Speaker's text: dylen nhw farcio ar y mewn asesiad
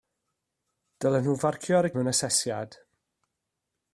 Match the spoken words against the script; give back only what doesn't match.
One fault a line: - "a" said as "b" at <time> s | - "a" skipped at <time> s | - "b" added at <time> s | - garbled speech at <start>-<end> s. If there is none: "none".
none